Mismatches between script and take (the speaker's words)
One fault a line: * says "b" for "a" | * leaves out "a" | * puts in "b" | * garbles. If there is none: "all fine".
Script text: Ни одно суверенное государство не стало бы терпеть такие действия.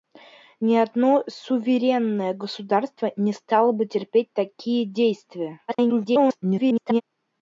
* garbles